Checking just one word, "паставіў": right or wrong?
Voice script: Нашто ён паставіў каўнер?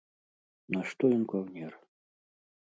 wrong